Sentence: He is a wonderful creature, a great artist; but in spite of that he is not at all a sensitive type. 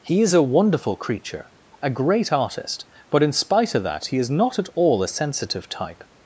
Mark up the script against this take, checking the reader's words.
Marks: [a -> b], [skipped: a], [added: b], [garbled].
He is a wonderful creature, a great artist; but in spite of that he is not at all a sensitive type.